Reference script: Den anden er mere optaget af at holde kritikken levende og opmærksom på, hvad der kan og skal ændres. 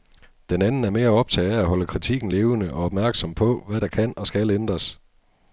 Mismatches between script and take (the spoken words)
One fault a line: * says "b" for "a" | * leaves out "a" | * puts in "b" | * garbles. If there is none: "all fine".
all fine